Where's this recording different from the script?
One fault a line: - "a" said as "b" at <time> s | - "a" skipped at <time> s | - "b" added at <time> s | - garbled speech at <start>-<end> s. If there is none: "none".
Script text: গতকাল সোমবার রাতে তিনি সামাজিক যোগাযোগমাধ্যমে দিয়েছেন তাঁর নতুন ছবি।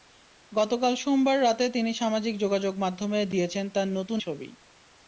none